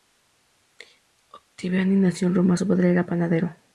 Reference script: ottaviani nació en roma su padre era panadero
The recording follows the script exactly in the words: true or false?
true